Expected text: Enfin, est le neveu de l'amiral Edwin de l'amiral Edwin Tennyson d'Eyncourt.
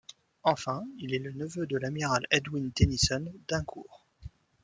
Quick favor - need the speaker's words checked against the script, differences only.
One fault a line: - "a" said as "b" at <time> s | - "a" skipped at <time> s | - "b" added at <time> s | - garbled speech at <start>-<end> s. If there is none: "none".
- "il" added at 1.0 s
- "de l'amiral Edwin" skipped at 2.7 s